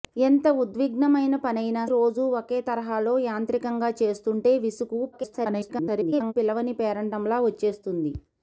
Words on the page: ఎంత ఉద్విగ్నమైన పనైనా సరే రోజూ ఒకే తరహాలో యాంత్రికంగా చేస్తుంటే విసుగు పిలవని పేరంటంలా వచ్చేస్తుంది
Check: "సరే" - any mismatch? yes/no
yes